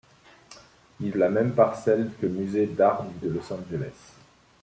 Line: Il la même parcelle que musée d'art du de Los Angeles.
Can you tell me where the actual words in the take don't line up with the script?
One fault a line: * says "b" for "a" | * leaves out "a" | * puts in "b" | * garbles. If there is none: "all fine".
all fine